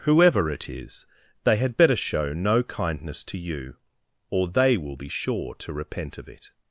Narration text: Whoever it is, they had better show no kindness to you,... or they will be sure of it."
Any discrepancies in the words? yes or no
yes